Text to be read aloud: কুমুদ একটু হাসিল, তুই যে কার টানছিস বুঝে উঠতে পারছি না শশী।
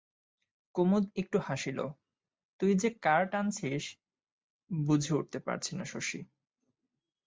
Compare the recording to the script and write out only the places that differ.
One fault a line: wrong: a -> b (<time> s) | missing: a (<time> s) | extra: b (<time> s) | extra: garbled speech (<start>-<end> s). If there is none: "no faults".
no faults